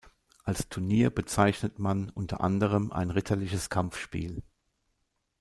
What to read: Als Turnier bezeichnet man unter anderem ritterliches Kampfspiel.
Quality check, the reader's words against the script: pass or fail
fail